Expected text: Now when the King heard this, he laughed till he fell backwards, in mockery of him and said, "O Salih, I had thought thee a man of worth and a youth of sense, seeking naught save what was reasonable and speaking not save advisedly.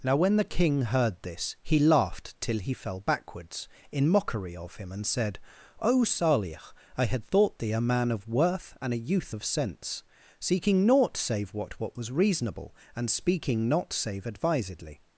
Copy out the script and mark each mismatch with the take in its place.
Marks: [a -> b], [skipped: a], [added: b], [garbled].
Now when the King heard this, he laughed till he fell backwards, in mockery of him and said, "O Salih, I had thought thee a man of worth and a youth of sense, seeking naught save what [added: what] was reasonable and speaking not save advisedly.